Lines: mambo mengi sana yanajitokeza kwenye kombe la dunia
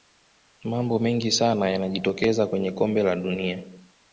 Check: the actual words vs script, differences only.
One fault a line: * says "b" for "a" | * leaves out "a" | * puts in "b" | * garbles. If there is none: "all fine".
all fine